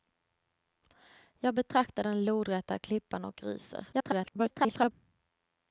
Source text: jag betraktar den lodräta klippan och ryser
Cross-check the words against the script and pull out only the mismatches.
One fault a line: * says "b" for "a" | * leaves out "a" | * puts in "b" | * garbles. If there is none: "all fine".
* garbles